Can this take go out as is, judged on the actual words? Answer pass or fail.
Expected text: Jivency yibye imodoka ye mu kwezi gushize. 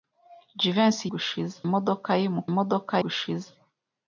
fail